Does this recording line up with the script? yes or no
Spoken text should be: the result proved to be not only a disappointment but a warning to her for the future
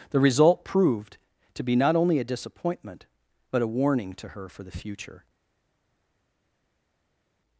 yes